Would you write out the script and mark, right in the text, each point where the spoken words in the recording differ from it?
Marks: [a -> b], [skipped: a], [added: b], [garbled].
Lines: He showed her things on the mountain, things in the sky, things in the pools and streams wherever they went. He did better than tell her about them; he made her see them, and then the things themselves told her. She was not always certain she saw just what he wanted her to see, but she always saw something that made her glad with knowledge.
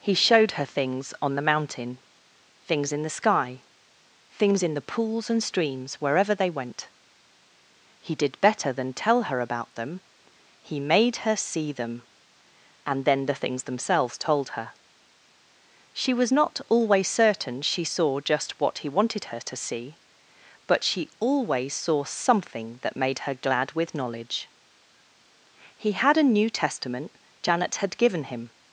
He showed her things on the mountain, things in the sky, things in the pools and streams wherever they went. He did better than tell her about them; he made her see them, and then the things themselves told her. She was not always certain she saw just what he wanted her to see, but she always saw something that made her glad with knowledge. [added: He had a New Testament Janet had given him]